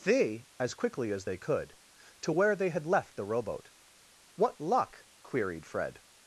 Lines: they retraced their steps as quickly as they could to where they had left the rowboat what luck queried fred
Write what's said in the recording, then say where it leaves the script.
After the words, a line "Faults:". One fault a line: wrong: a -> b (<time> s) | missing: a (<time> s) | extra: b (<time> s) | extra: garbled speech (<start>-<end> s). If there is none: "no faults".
they as quickly as they could to where they had left the rowboat what luck queried fred
Faults:
missing: retraced their steps (0.5 s)